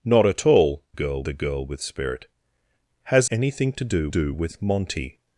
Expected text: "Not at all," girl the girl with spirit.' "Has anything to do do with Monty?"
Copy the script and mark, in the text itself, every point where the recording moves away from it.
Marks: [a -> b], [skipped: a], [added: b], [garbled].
"Not at all," girl the girl with spirit.' "Has anything to do do with Monty?"